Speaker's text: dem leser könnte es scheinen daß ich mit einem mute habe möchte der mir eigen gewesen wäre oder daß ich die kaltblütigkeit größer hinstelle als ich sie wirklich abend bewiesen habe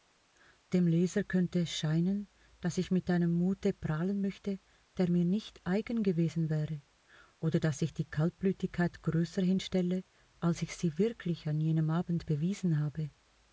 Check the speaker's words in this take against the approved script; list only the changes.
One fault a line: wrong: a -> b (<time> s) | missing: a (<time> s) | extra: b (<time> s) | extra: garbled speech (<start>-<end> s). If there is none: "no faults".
wrong: habe -> prahlen (3.7 s)
extra: nicht (5.2 s)
extra: an jenem (11.5 s)